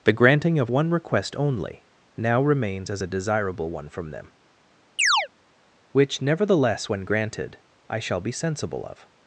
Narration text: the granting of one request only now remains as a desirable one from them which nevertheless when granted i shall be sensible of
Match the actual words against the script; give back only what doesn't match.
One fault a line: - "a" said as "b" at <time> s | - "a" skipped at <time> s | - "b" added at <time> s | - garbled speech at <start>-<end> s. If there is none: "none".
none